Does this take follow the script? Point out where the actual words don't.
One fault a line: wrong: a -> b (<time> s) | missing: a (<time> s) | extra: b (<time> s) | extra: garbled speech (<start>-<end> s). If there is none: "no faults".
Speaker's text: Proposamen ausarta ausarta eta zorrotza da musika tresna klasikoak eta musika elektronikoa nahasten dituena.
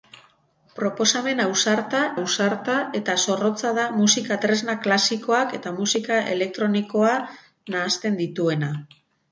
no faults